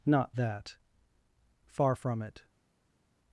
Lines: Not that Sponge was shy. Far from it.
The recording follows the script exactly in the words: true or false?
false